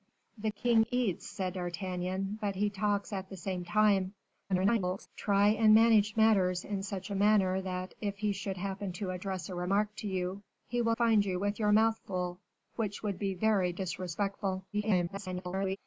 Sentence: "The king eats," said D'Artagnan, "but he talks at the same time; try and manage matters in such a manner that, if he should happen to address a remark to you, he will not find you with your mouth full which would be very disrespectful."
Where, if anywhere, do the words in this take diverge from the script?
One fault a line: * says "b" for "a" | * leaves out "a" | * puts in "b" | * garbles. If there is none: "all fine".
* garbles
* leaves out "not"
* garbles